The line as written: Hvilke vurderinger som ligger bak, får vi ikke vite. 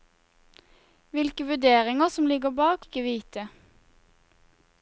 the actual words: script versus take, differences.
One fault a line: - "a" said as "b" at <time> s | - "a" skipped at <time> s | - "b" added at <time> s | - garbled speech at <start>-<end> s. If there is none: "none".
- "får vi" skipped at 2.9 s